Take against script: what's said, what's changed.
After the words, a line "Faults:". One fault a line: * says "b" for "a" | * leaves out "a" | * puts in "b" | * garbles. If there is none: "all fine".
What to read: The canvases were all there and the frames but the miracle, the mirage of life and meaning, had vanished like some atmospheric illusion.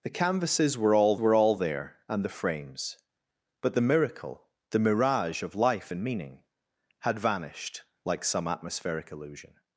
The canvases were all were all there and the frames but the miracle, the mirage of life and meaning, had vanished like some atmospheric illusion.
Faults:
* puts in "were all"